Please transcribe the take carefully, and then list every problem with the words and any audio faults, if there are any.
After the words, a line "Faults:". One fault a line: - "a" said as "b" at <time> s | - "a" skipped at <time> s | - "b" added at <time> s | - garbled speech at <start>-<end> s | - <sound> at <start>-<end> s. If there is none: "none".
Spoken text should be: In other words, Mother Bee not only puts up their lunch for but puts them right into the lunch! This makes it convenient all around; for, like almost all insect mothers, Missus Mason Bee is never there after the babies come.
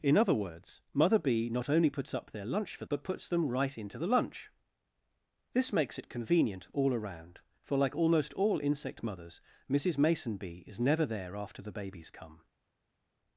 In other words, Mother Bee not only puts up their lunch for but puts them right into the lunch! This makes it convenient all around; for, like almost all insect mothers, Missus Mason Bee is never there after the babies come.
Faults:
none